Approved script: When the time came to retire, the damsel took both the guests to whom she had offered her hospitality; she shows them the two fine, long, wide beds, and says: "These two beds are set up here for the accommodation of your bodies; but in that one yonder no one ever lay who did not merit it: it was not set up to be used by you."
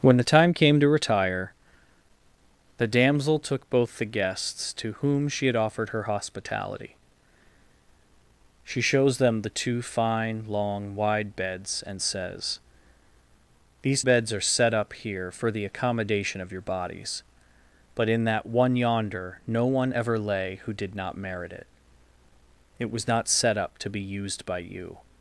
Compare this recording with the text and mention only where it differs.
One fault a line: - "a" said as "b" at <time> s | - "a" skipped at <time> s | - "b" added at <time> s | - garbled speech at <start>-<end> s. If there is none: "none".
- "two" skipped at 14.0 s